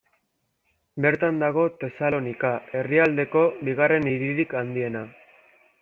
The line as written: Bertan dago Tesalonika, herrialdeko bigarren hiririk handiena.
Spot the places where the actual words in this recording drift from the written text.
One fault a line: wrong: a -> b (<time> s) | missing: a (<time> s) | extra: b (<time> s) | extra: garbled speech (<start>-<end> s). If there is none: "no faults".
no faults